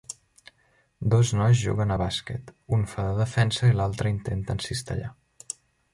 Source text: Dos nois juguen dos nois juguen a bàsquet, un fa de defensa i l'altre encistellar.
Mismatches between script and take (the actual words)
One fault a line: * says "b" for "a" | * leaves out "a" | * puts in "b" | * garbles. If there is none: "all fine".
* leaves out "dos nois juguen"
* puts in "intenta"